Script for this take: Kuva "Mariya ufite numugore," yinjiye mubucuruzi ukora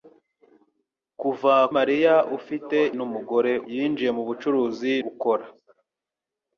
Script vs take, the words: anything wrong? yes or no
no